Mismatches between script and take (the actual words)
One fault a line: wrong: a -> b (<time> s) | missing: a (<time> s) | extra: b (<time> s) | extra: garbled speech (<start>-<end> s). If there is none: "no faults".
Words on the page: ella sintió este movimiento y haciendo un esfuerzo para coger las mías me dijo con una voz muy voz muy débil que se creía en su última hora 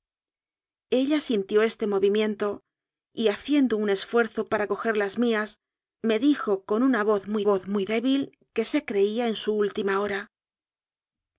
no faults